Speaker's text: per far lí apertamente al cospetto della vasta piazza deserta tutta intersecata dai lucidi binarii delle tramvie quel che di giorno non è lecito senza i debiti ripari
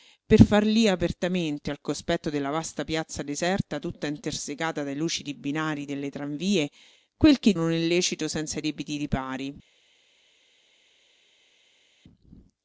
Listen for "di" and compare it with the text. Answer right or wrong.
wrong